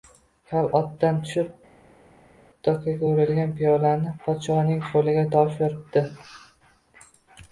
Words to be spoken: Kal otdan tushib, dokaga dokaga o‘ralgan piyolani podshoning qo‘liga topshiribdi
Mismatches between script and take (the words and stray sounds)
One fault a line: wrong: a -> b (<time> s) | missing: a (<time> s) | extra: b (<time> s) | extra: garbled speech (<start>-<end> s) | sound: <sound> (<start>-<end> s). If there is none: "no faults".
missing: dokaga (3.1 s)